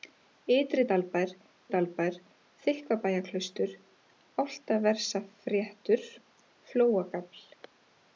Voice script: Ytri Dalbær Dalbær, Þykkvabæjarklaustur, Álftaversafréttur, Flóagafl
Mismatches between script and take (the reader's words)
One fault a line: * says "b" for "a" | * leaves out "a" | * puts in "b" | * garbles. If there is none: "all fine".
all fine